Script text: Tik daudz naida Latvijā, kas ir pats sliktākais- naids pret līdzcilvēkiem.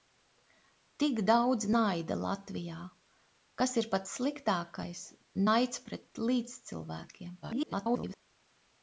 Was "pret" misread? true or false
false